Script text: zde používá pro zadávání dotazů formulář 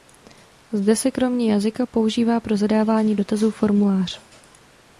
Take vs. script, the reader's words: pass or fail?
fail